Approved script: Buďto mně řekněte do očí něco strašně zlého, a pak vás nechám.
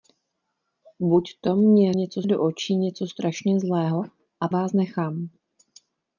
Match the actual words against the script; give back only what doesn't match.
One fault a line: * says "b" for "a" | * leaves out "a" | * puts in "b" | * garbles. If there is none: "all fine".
* says "něco" for "řekněte"
* leaves out "pak"